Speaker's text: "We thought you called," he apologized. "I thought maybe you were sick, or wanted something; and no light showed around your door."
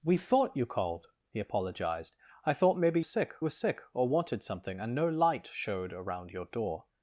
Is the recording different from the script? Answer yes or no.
yes